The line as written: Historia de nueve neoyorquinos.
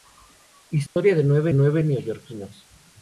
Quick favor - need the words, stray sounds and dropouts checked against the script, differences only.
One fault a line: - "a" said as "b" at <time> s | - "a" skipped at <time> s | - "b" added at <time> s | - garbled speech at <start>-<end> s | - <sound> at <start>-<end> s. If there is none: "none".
- dropout at 0.9-1.0 s
- "nueve" added at 1.5 s